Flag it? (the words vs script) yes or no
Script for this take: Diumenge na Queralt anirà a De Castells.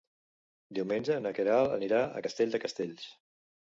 yes